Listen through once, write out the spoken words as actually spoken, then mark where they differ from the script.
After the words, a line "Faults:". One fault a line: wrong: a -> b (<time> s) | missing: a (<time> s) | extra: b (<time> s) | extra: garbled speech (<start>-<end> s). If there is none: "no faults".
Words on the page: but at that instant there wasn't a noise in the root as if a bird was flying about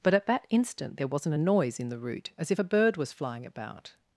but at that instant there wasn't a noise in the root as if a bird was flying about
Faults:
no faults